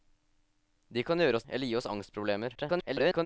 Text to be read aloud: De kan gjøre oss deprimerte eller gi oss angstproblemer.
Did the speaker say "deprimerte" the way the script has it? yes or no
no